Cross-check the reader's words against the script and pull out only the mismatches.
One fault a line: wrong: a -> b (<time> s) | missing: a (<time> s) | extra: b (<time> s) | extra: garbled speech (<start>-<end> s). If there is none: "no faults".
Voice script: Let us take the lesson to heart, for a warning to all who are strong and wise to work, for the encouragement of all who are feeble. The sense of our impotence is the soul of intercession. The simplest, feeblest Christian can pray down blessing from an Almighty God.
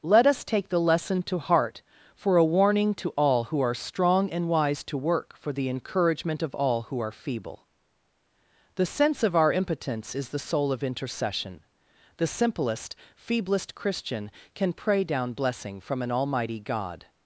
no faults